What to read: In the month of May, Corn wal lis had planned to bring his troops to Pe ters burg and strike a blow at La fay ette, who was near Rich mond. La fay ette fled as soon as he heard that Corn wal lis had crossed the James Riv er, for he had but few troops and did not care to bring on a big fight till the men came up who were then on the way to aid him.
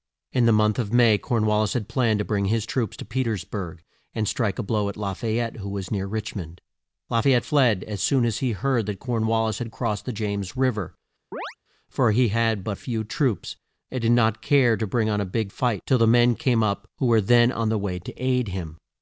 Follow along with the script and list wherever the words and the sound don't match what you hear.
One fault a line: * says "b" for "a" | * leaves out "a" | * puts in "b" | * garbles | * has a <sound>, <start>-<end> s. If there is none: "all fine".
* has a chirp, 11.3-11.6 s